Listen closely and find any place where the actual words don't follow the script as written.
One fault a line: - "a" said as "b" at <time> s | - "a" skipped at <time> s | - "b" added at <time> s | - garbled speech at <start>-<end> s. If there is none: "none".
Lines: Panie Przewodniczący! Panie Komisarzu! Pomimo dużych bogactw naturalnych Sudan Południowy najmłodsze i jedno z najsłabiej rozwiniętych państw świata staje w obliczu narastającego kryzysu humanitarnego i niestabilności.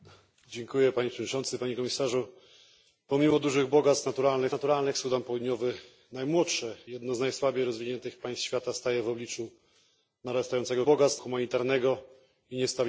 - "naturalnych" added at 4.5 s
- "i" skipped at 6.8 s
- "kryzysu" said as "bogactw" at 10.8 s